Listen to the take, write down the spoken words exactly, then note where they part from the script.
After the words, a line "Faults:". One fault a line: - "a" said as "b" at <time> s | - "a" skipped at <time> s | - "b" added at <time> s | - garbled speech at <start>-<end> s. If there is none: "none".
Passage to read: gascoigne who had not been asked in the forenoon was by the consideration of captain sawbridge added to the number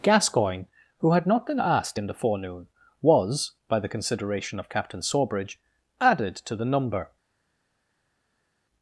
gascoigne who had not been asked in the forenoon was by the consideration of captain sawbridge added to the number
Faults:
none